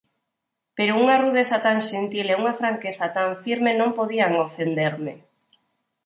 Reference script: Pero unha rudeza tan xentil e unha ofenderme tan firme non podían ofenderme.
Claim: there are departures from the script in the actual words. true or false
true